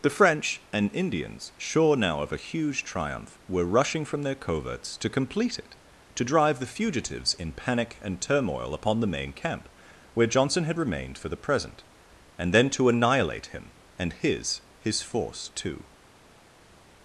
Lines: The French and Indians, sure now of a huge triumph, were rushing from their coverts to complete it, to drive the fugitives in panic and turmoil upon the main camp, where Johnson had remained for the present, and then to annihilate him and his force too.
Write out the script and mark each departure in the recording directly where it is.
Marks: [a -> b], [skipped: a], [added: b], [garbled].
The French and Indians, sure now of a huge triumph, were rushing from their coverts to complete it, to drive the fugitives in panic and turmoil upon the main camp, where Johnson had remained for the present, and then to annihilate him and his [added: his] force too.